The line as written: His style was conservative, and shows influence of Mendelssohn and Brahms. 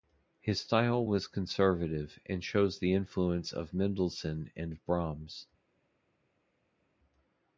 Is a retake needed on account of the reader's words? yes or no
yes